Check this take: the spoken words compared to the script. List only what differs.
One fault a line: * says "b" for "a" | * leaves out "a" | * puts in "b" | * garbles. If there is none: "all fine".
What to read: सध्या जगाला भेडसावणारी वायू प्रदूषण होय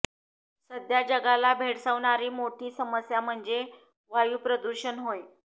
* puts in "मोठी समस्या म्हणजे"